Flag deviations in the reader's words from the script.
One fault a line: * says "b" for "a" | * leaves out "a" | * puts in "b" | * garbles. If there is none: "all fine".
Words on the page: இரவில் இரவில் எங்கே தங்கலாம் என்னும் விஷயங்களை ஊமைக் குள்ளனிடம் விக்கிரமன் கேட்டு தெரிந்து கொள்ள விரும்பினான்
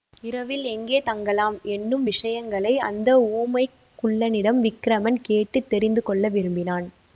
* leaves out "இரவில்"
* puts in "அந்த"